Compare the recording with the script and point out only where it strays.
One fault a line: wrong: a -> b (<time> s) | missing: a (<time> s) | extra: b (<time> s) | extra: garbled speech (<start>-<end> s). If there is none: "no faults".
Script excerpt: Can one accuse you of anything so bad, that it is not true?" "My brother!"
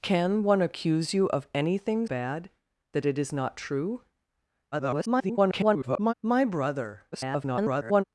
missing: so (2.1 s)
extra: garbled speech (4.7-6.1 s)
extra: garbled speech (7.1-8.0 s)